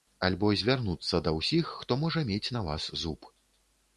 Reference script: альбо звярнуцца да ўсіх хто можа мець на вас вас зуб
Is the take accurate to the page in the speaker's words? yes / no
no